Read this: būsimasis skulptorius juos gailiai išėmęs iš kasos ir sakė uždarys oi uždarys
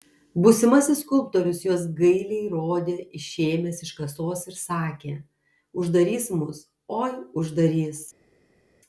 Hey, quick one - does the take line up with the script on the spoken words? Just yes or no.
no